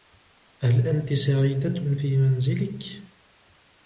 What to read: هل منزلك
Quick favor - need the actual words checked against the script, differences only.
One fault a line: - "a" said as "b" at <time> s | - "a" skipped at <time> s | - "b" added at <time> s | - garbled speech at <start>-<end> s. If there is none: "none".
- "أنتِ سعيدة في" added at 0.9 s